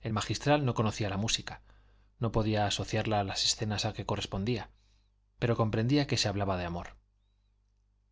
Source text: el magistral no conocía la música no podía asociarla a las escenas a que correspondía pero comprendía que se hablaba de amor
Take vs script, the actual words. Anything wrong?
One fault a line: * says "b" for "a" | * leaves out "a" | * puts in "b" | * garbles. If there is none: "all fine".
all fine